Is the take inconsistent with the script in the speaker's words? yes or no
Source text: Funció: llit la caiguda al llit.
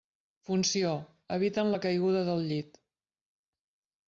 yes